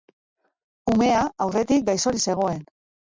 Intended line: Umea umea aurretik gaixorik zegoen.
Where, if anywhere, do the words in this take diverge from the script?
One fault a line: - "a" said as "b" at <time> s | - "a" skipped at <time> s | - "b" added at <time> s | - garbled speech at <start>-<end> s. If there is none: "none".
- "umea" skipped at 1.2 s